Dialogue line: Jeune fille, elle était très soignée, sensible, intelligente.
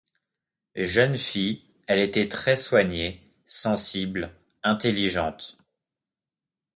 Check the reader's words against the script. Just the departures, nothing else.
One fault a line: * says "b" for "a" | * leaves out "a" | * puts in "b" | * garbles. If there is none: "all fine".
all fine